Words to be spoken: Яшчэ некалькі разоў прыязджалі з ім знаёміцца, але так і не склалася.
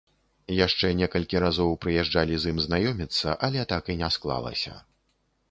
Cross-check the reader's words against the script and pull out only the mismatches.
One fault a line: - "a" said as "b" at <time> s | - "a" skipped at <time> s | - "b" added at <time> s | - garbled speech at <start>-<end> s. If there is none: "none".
none